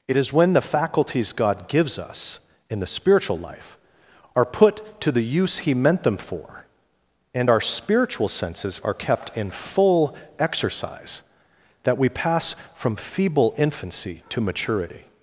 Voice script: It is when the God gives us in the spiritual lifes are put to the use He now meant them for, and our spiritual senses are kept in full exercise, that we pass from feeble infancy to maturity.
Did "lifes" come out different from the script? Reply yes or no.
yes